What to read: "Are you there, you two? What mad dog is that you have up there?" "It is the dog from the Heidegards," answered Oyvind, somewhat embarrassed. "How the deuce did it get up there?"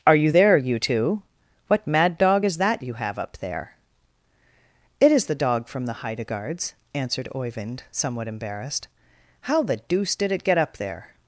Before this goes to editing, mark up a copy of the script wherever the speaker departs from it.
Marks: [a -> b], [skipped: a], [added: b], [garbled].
"Are you there, you two? What mad dog is that you have up there?" "It is the dog from the Heidegards," answered Oyvind, somewhat embarrassed. "How the deuce did it get up there?"